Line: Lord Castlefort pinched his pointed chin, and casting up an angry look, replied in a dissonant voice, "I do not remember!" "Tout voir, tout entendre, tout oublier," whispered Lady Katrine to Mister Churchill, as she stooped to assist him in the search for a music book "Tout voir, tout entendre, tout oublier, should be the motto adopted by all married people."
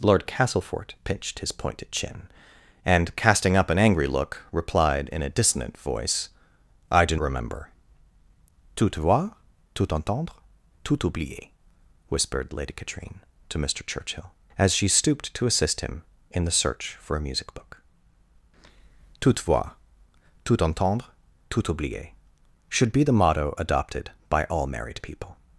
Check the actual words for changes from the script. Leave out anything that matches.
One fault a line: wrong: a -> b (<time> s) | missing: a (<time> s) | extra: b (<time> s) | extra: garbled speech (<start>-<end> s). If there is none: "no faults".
missing: not (7.2 s)